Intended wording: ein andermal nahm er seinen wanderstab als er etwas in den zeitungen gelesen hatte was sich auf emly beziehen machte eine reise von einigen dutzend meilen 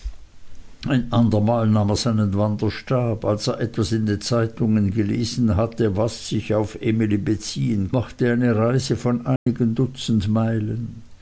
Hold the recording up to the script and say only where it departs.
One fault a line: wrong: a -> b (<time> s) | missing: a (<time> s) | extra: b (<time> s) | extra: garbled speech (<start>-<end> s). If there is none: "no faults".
no faults